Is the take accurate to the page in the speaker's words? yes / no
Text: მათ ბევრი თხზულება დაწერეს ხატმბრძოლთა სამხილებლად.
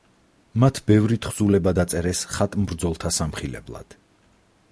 yes